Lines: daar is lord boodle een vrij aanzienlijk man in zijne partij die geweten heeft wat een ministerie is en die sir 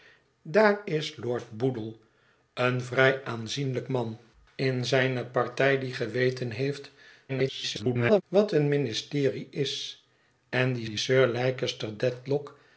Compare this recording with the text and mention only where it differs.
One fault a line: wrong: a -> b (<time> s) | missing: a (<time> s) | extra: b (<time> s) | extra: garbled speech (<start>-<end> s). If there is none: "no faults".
extra: garbled speech (7.3-8.2 s)
extra: die (10.8 s)